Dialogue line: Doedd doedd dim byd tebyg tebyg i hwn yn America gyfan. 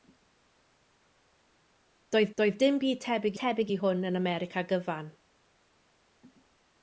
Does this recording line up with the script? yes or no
yes